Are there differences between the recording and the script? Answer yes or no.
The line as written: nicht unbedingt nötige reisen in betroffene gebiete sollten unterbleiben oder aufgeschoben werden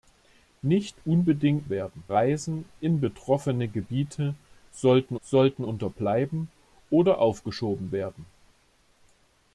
yes